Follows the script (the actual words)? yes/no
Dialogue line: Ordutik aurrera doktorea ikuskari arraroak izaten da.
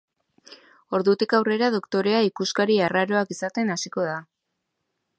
no